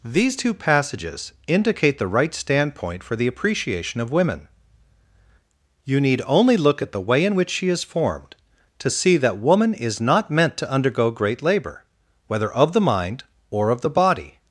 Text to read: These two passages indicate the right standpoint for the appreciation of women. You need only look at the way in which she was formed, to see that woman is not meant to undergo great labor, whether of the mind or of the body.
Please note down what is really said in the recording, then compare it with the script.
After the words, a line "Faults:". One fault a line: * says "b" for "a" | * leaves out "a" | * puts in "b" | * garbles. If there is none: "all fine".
These two passages indicate the right standpoint for the appreciation of women. You need only look at the way in which she is formed, to see that woman is not meant to undergo great labor, whether of the mind or of the body.
Faults:
* says "is" for "was"